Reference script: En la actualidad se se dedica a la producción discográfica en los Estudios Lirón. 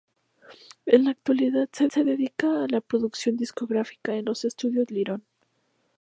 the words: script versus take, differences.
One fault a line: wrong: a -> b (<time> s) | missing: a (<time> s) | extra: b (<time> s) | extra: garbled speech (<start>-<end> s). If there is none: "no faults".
no faults